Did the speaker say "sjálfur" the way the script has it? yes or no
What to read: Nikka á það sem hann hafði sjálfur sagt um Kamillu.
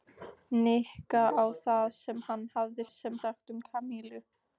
no